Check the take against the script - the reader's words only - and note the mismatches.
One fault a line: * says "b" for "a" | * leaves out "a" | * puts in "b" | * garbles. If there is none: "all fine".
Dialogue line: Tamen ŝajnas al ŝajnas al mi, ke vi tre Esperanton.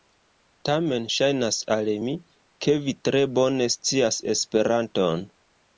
* leaves out "ŝajnas al"
* puts in "bone scias"